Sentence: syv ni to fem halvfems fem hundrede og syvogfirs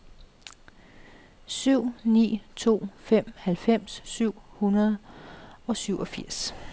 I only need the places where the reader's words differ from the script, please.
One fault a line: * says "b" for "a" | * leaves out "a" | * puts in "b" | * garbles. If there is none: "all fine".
* says "syv" for "fem"